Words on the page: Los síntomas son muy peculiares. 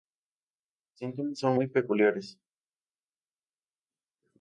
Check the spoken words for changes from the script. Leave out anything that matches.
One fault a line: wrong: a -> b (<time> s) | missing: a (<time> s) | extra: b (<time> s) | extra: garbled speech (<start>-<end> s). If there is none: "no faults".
no faults